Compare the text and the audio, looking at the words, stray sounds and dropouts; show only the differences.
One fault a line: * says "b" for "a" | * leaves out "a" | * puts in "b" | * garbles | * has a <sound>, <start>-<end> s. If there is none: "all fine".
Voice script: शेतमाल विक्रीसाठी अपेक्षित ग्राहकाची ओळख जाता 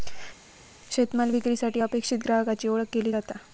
* puts in "केली"